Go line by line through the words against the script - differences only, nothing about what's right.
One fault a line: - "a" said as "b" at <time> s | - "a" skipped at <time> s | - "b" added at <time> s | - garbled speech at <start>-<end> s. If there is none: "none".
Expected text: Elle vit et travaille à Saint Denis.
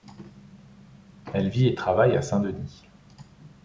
none